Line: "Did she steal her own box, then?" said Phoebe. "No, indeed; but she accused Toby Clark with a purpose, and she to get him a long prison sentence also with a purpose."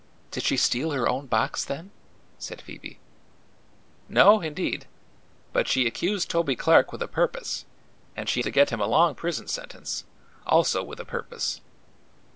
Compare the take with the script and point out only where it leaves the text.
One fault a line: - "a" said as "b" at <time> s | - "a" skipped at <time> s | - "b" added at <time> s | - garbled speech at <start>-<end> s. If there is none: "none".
none